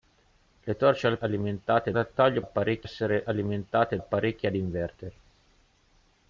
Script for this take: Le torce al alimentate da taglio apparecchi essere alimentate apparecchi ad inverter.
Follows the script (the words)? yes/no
yes